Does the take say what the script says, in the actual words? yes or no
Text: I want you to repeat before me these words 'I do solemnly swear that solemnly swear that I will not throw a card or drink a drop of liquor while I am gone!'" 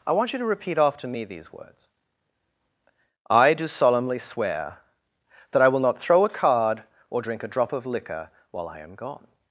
no